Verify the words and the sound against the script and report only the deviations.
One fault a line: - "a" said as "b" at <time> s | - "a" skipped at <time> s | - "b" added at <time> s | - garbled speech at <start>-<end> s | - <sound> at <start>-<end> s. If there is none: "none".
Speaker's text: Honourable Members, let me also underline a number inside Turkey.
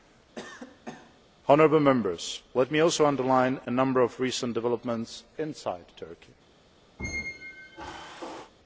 - cough at 0.3-1.2 s
- "of recent developments" added at 4.0 s
- squeak at 7.0-8.5 s